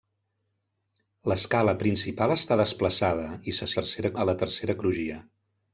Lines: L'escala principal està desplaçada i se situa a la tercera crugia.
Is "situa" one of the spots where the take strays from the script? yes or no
yes